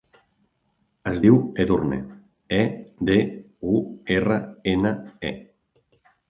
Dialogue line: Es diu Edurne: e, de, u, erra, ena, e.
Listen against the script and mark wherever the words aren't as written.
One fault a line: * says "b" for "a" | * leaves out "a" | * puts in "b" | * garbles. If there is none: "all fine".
all fine